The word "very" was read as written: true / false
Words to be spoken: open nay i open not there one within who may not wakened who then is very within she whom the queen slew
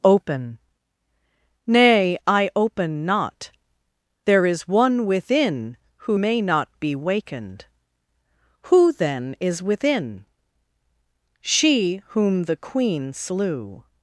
false